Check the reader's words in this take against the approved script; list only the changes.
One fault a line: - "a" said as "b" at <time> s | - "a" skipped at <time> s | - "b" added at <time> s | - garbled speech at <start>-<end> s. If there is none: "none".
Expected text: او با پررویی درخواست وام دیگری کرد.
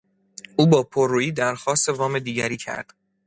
none